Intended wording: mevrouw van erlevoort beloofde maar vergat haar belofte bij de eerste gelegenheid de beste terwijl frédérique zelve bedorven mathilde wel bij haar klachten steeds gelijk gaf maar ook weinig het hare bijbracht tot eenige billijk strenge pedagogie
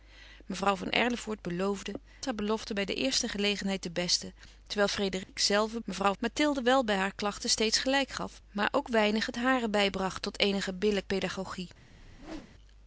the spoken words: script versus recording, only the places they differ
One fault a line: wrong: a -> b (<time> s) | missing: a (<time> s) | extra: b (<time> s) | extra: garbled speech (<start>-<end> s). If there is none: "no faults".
missing: maar vergat (1.9 s)
wrong: bedorven -> mevrouw (5.8 s)
missing: strenge (11.1 s)